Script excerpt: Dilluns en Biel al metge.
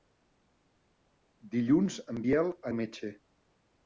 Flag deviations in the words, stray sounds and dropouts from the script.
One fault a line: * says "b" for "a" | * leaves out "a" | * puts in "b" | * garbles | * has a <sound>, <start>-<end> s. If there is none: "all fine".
all fine